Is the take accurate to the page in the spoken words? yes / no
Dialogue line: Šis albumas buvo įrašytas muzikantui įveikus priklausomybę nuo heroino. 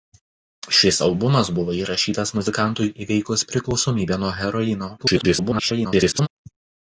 no